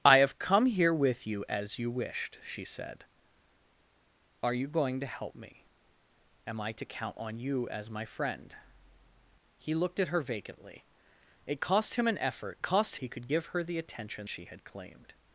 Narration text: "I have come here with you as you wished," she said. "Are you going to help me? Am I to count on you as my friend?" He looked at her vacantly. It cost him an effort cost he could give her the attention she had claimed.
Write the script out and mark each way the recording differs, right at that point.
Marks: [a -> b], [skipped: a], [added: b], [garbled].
"I have come here with you as you wished," she said. "Are you going to help me? Am I to count on you as my friend?" He looked at her vacantly. It cost him an effort cost he could give her the attention she had claimed.